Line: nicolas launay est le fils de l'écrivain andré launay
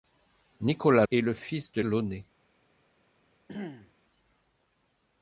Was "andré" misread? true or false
true